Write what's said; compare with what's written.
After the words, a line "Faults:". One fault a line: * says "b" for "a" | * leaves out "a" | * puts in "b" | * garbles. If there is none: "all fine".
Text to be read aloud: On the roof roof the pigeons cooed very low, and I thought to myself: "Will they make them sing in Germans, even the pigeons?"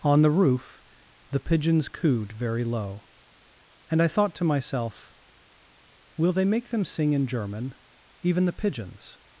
On the roof the pigeons cooed very low, and I thought to myself: "Will they make them sing in German, even the pigeons?"
Faults:
* leaves out "roof"
* says "German" for "Germans"